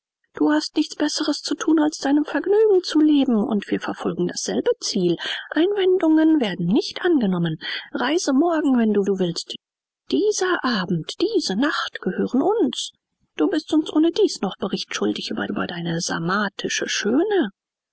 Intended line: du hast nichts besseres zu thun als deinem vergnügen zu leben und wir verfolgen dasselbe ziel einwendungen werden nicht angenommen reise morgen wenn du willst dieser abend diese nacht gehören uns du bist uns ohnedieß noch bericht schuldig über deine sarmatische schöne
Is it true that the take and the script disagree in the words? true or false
true